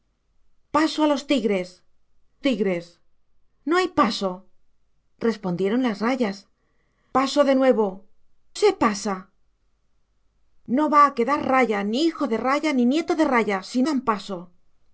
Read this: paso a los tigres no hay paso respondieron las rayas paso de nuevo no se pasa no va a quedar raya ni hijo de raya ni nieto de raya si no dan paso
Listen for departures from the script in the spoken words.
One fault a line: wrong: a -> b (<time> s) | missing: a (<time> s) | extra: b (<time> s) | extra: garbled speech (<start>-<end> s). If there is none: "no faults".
extra: tigres (2.5 s)
missing: no (7.9 s)
missing: no (13.8 s)